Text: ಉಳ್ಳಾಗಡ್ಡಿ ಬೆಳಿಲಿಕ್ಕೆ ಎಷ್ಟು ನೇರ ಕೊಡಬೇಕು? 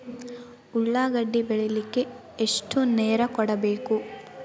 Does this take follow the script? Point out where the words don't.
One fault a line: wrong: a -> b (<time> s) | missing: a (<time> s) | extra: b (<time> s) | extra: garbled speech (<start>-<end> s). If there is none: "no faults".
no faults